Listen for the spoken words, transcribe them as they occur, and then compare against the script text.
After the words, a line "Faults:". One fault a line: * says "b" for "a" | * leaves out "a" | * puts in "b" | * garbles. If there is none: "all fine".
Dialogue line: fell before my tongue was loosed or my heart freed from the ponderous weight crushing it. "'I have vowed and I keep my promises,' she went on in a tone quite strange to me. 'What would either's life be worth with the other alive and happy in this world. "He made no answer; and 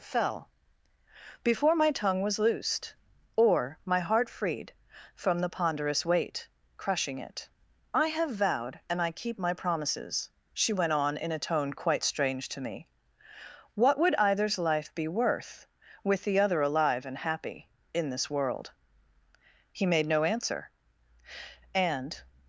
fell before my tongue was loosed or my heart freed from the ponderous weight crushing it. "'I have vowed and I keep my promises,' she went on in a tone quite strange to me. 'What would either's life be worth with the other alive and happy in this world. "He made no answer; and
Faults:
all fine